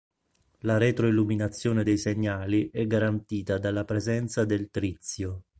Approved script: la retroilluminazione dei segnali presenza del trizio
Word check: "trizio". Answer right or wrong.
right